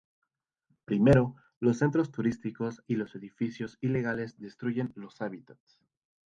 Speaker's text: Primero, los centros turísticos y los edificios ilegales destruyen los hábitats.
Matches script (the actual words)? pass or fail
pass